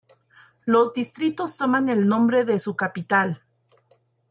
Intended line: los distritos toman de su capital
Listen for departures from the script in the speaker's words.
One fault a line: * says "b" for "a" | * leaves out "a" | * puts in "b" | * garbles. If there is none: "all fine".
* puts in "el nombre"